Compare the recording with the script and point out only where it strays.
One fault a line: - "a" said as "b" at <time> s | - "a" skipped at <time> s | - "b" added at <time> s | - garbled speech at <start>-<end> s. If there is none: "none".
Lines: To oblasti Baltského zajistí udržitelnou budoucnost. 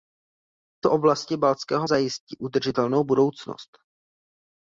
none